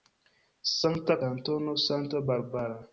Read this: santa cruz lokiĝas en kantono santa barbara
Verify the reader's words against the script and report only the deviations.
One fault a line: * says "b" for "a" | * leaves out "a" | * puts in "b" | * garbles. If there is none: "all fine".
* leaves out "cruz lokiĝas en"